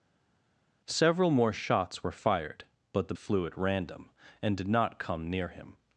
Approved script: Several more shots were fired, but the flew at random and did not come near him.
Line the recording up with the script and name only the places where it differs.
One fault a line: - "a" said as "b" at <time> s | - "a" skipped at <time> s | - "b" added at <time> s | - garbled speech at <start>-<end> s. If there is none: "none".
none